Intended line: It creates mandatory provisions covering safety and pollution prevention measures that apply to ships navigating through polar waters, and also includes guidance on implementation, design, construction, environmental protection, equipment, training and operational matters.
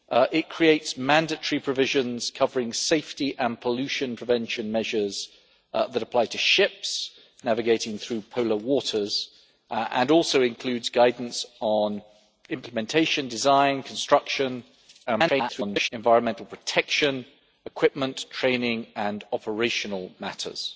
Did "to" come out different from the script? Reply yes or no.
no